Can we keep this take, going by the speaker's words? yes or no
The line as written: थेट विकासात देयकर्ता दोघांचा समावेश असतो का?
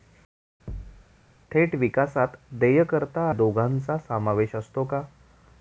yes